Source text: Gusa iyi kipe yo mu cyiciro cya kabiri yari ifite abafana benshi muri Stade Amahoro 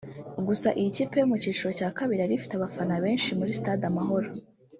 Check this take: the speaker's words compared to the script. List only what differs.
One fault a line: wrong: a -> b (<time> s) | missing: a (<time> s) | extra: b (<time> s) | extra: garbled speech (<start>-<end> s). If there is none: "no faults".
no faults